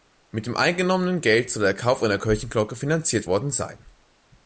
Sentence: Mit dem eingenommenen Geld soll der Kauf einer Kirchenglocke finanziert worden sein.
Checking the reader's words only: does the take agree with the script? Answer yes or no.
yes